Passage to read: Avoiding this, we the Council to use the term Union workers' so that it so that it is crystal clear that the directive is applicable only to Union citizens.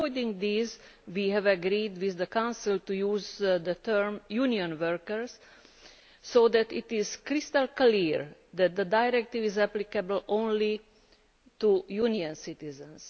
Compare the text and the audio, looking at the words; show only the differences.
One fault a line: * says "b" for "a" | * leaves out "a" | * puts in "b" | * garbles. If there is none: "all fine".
* puts in "have agreed with"
* leaves out "so that it"